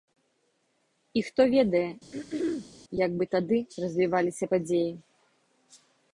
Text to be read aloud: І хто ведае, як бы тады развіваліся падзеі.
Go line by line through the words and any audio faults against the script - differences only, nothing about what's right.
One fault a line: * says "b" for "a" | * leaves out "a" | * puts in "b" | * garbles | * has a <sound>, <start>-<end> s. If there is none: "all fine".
* has a throat clearing, 2.1-2.7 s